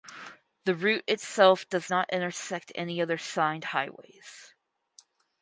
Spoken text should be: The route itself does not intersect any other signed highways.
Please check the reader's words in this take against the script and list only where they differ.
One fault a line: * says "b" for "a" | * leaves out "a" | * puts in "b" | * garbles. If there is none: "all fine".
all fine